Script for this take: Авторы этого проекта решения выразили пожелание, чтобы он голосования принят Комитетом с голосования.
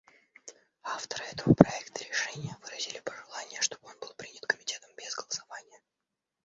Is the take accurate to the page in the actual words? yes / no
no